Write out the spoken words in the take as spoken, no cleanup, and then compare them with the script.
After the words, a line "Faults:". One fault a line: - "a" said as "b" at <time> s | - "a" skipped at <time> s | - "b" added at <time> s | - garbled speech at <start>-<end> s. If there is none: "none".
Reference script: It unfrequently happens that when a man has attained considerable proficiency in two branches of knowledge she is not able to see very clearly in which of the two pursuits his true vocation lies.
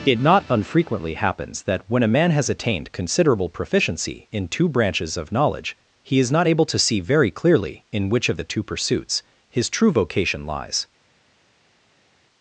It not unfrequently happens that when a man has attained considerable proficiency in two branches of knowledge he is not able to see very clearly in which of the two pursuits his true vocation lies.
Faults:
- "not" added at 0.2 s
- "she" said as "he" at 6.0 s